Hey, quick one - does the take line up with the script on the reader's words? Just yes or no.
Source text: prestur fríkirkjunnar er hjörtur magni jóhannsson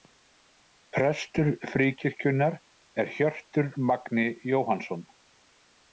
yes